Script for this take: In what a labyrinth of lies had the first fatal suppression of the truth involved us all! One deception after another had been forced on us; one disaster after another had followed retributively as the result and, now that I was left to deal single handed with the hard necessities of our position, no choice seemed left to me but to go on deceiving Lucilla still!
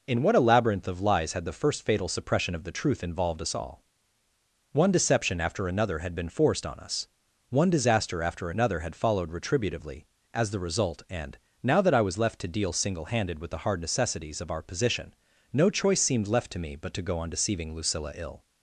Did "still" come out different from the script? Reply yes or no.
yes